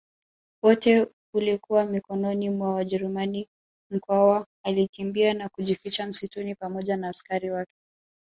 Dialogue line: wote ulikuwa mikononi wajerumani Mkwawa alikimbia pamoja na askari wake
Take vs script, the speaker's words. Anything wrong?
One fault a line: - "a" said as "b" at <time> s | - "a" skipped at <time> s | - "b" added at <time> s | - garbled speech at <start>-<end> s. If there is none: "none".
- "mwa" added at 2.5 s
- "na kujificha msituni" added at 5.3 s